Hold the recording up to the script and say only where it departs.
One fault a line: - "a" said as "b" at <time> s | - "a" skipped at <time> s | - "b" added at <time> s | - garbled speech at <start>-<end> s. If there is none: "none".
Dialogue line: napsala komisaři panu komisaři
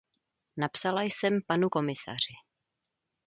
- "komisaři" said as "jsem" at 1.0 s